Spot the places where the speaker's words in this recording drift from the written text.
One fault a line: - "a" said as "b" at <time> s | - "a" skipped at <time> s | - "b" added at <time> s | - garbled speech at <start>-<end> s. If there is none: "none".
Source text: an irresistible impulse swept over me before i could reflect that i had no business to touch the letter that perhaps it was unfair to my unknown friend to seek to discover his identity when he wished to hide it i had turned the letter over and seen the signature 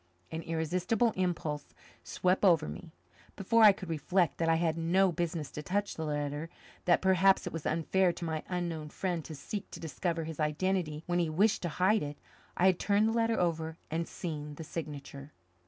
none